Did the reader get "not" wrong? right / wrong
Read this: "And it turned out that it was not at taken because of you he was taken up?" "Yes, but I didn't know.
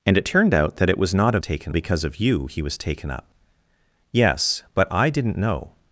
right